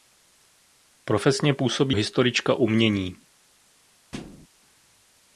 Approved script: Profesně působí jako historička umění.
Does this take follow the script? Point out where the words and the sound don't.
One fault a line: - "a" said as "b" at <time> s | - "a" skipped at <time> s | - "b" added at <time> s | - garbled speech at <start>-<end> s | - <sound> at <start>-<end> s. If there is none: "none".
- "jako" skipped at 2.0 s
- thud at 4.1-4.5 s